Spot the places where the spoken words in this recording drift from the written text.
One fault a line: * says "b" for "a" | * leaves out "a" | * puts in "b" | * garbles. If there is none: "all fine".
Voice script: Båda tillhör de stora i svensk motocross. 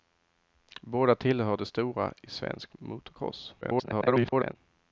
* garbles